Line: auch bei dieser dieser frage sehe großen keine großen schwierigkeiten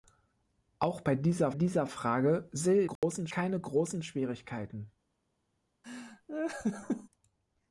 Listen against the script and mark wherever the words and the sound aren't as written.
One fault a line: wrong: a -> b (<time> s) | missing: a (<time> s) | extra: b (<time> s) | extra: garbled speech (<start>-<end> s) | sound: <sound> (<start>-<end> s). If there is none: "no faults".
sound: dropout (3.0-3.0 s)
sound: laugh (5.8-7.1 s)